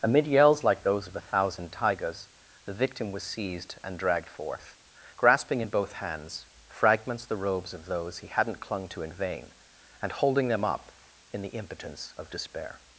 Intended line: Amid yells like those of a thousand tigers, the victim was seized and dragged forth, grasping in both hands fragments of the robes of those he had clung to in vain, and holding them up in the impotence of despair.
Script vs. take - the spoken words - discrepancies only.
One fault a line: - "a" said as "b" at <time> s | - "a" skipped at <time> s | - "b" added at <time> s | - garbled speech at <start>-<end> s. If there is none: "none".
- "of" skipped at 7.3 s
- "had" said as "hadn't" at 8.3 s